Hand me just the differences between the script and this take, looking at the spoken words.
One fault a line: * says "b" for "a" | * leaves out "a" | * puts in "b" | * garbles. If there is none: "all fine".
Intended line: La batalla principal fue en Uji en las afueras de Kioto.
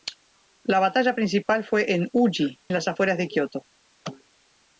* leaves out "en"